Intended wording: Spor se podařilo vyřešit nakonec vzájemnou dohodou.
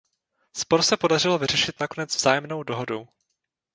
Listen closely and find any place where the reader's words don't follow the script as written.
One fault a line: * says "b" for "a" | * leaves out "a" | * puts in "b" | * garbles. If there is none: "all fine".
all fine